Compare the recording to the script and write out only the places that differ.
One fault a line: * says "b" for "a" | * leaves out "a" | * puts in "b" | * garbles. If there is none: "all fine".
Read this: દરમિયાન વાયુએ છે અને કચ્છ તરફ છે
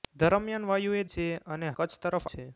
all fine